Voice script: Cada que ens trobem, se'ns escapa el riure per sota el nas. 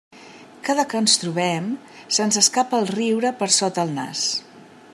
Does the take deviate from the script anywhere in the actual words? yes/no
no